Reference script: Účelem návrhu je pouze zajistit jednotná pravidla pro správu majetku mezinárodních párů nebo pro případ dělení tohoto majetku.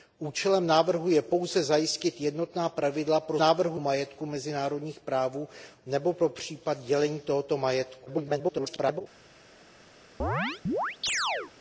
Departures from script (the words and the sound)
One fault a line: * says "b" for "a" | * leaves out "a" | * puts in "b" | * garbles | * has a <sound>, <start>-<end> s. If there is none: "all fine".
* says "návrhu" for "správu"
* garbles
* has a chirp, 10.2-11.5 s